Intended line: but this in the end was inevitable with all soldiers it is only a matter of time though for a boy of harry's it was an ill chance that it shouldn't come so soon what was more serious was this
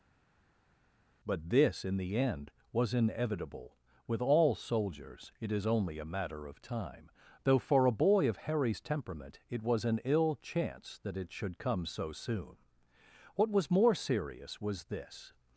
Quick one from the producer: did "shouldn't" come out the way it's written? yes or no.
no